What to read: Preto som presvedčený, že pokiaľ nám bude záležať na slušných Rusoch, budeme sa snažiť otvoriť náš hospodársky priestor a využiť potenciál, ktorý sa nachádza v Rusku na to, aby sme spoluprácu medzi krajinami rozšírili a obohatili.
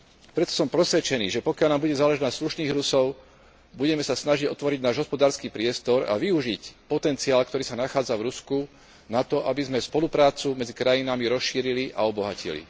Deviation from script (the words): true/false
false